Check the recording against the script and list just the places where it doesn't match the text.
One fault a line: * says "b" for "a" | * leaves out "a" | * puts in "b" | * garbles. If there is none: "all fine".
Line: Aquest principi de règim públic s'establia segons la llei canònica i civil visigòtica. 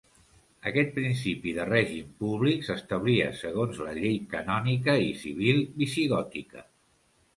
all fine